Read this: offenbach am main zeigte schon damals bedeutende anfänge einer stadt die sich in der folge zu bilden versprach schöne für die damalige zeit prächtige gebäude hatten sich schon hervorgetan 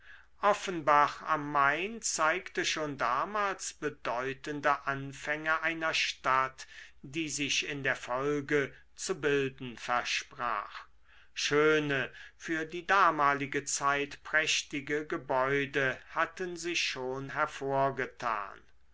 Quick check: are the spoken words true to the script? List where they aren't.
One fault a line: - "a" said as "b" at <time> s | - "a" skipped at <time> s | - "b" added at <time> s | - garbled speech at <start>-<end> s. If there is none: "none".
none